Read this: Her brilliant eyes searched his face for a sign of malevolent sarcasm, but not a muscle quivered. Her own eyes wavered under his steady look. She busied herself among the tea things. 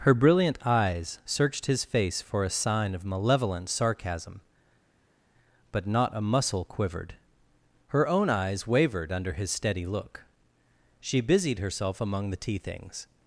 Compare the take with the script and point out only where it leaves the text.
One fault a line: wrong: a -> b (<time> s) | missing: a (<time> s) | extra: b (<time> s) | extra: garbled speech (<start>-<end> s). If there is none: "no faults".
no faults